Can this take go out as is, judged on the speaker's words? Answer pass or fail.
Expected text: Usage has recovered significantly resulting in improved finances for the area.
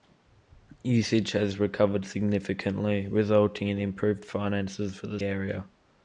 pass